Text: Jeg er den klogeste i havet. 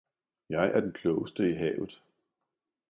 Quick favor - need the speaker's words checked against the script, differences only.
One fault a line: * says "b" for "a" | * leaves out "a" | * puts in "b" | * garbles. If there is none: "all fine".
all fine